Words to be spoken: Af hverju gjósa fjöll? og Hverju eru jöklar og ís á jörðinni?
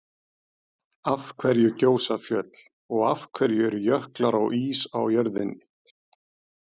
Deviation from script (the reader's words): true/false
true